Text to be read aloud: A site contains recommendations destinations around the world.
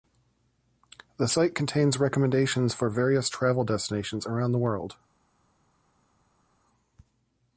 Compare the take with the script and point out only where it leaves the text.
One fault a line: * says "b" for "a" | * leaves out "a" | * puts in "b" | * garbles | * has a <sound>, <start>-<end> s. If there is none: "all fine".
* says "The" for "A"
* puts in "for various travel"